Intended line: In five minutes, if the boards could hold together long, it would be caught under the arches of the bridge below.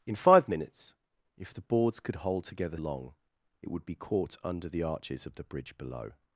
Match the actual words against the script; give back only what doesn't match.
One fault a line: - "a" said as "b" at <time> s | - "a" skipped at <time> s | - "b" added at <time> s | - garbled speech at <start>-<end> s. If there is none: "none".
none